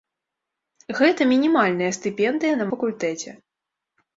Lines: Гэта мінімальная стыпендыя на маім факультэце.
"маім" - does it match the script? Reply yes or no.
no